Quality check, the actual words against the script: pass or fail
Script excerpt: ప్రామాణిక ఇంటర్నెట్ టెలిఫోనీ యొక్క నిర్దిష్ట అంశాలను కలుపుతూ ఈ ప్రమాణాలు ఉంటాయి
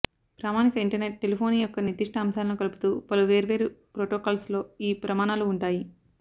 fail